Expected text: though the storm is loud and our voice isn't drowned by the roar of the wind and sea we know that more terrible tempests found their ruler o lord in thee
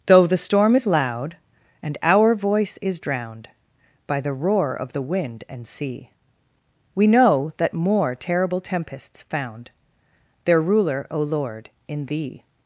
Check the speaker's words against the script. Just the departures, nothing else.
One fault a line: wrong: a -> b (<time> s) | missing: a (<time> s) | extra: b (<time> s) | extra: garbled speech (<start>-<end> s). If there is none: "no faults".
wrong: isn't -> is (2.8 s)